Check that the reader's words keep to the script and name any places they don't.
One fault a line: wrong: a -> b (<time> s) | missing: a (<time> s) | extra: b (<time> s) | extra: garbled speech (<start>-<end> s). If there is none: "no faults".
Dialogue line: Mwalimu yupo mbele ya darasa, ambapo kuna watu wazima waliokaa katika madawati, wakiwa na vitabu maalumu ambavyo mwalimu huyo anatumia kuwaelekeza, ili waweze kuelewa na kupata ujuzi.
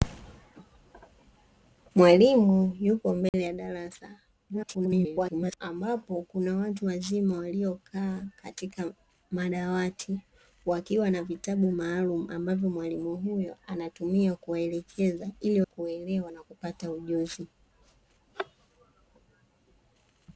extra: garbled speech (4.5-5.6 s)
missing: waweze (15.6 s)